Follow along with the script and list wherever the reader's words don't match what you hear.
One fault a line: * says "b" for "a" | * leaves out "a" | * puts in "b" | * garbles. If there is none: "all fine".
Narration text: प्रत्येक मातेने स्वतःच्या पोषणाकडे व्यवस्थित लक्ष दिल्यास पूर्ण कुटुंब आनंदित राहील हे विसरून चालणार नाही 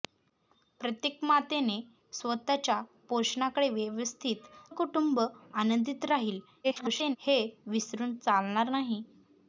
* leaves out "लक्ष दिल्यास पूर्ण"
* garbles